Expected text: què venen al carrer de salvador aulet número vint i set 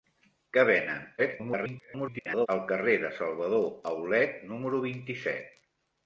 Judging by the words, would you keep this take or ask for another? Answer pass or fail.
fail